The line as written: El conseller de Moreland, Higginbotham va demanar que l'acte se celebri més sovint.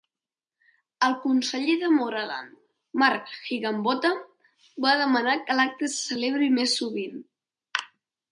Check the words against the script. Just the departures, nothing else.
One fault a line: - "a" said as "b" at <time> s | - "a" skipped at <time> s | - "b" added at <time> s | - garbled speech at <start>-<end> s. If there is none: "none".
- "Mark" added at 3.0 s